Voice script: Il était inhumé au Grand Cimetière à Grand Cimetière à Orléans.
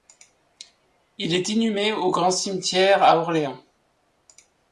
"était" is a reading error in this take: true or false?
true